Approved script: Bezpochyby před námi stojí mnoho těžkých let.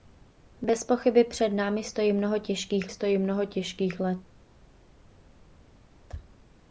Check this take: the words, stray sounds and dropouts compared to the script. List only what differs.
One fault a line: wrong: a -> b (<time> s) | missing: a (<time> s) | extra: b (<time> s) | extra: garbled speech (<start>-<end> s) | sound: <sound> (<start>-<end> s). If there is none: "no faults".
extra: stojí mnoho těžkých (2.9 s)